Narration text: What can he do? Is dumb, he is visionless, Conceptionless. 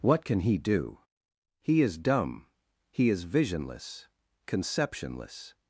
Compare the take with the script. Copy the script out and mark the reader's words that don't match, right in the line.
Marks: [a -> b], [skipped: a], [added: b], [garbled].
What can he do? [added: He] Is dumb, he is visionless, Conceptionless.